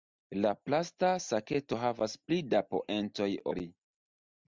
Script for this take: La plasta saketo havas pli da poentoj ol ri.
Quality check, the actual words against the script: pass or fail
fail